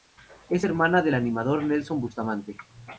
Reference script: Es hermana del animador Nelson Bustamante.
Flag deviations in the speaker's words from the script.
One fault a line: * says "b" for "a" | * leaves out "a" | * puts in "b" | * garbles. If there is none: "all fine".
all fine